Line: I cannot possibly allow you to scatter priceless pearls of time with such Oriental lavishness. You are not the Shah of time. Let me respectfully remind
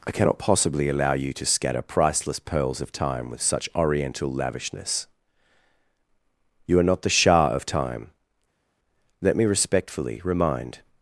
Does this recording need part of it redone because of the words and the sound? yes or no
no